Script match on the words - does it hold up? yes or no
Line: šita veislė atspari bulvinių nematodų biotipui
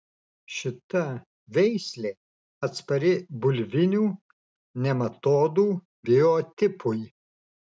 yes